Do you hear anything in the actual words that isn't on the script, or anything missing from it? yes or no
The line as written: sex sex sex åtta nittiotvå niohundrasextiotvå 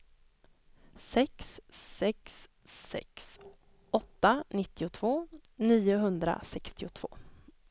no